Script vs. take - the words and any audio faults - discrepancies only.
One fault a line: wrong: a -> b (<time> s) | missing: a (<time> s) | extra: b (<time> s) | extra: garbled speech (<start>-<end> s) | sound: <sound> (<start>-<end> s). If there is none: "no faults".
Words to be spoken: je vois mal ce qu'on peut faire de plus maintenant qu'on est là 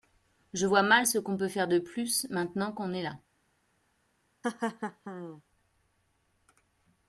sound: laugh (4.4-5.4 s)